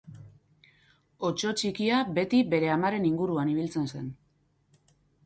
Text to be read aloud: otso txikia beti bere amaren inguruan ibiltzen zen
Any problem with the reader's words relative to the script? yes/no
no